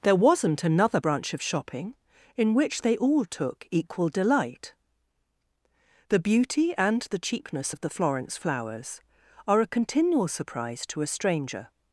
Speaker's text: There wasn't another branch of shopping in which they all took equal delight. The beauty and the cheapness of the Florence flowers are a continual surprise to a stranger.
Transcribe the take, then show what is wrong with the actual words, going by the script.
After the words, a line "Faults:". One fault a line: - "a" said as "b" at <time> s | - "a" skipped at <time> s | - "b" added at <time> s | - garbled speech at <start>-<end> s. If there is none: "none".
There wasn't another branch of shopping in which they all took equal delight. The beauty and the cheapness of the Florence flowers are a continual surprise to a stranger.
Faults:
none